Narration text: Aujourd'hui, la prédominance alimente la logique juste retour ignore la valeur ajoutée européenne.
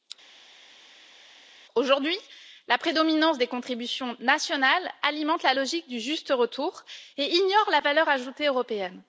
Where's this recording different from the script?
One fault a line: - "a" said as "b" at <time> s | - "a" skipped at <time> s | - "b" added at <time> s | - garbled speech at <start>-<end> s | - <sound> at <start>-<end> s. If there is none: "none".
- "des contributions nationales" added at 3.4 s
- "du" added at 5.9 s
- "et" added at 7.2 s